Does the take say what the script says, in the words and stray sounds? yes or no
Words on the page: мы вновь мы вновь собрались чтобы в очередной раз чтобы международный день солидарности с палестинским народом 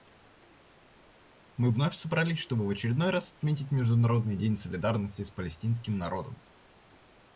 no